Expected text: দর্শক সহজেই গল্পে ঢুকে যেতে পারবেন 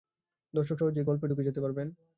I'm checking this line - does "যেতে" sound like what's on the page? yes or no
yes